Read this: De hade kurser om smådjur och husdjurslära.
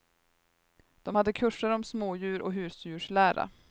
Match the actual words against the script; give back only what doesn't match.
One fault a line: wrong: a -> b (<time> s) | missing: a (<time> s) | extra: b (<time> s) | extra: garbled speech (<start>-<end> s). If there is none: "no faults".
no faults